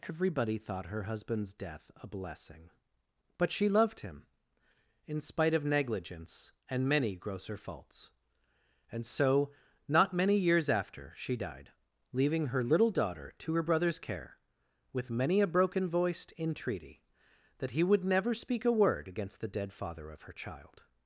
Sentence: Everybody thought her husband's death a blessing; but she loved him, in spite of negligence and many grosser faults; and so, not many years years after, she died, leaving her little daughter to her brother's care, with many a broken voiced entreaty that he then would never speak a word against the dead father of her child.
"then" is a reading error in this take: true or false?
true